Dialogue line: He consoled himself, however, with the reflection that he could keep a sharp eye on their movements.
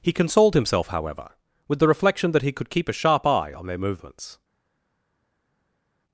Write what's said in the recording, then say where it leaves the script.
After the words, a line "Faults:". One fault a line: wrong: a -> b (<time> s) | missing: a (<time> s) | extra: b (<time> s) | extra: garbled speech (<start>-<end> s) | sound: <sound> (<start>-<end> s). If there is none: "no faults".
He consoled himself, however, with the reflection that he could keep a sharp eye on their movements.
Faults:
no faults